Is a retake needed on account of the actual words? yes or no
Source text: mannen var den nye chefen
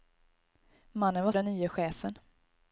no